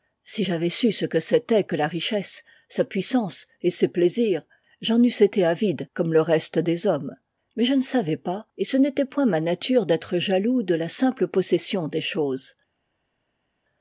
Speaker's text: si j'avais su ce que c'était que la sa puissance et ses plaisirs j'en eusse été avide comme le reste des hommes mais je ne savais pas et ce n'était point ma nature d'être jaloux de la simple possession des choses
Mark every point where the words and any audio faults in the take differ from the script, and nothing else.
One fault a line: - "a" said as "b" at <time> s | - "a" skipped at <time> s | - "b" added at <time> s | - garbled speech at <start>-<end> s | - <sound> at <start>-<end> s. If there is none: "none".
- "richesse" added at 1.9 s